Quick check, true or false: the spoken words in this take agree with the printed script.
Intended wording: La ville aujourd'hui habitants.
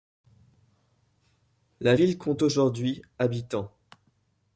false